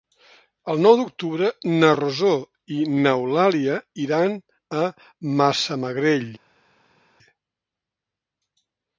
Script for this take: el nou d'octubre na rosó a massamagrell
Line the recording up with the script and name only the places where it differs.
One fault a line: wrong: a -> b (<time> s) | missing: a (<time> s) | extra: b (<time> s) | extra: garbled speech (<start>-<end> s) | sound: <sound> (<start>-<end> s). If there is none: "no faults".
extra: i n'eulàlia iran (2.7 s)